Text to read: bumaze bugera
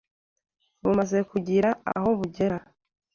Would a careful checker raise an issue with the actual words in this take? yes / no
yes